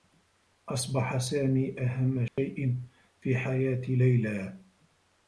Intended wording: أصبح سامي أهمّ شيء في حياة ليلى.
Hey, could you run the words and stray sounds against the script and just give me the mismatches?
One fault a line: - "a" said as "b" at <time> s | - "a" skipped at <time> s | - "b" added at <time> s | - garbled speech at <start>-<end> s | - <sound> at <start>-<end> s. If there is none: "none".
- dropout at 2.3-2.4 s